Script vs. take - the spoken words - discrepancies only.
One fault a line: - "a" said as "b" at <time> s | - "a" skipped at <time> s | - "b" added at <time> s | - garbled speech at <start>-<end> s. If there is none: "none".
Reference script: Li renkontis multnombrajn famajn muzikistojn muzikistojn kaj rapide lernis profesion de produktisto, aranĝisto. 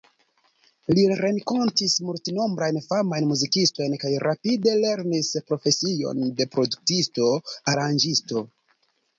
- "muzikistojn" skipped at 4.0 s